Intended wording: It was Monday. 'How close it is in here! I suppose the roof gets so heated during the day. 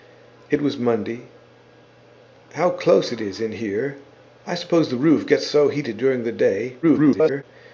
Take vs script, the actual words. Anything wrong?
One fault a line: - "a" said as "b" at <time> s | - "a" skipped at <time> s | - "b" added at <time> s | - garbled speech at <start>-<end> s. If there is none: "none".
- garbled speech at 6.8-7.4 s